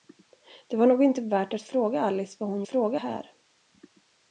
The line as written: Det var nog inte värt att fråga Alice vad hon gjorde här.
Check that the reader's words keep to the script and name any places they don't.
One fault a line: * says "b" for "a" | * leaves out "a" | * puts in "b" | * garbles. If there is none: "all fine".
* says "fråga" for "gjorde"